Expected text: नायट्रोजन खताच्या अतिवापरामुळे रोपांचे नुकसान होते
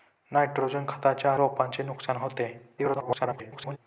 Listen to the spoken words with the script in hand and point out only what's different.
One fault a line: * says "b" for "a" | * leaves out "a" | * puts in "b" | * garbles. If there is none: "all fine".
* leaves out "अतिवापरामुळे"
* garbles